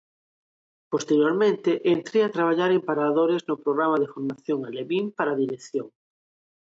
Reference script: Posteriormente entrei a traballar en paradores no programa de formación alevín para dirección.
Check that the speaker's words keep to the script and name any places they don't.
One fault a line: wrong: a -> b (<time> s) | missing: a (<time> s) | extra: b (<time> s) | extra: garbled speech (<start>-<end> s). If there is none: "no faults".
no faults